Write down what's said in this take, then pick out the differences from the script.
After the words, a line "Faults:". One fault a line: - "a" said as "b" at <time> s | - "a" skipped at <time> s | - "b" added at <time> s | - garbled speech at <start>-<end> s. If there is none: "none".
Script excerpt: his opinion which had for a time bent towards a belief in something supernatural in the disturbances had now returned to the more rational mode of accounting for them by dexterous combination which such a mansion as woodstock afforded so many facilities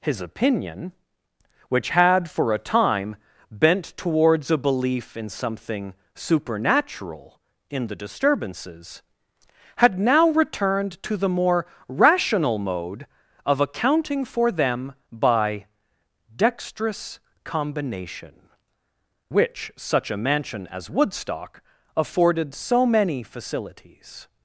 his opinion which had for a time bent towards a belief in something supernatural in the disturbances had now returned to the more rational mode of accounting for them by dexterous combination which such a mansion as woodstock afforded so many facilities
Faults:
none